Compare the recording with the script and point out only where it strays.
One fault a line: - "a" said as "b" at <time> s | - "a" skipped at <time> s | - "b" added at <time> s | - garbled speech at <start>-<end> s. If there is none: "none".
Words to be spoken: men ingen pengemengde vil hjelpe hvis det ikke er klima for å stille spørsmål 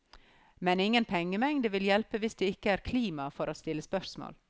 none